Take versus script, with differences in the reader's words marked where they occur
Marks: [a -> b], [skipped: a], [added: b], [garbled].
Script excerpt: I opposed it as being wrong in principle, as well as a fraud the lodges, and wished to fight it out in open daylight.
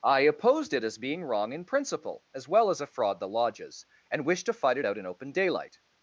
I opposed it as being wrong in principle, as well as a fraud the lodges, and wished to fight it out in open daylight.